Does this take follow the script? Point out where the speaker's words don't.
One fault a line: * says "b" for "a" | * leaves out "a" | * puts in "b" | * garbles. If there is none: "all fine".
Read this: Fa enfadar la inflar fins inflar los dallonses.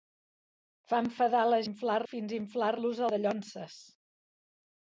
all fine